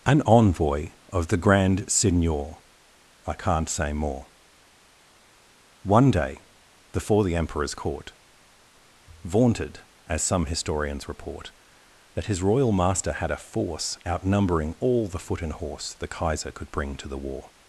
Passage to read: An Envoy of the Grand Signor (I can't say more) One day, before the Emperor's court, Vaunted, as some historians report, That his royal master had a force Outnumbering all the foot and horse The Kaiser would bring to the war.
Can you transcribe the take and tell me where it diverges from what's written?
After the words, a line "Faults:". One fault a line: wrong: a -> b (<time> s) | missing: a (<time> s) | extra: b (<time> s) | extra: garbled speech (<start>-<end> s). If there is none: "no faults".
An Envoy of the Grand Signor (I can't say more) One day, before the Emperor's court, Vaunted, as some historians report, That his royal master had a force Outnumbering all the foot and horse The Kaiser could bring to the war.
Faults:
wrong: would -> could (16.5 s)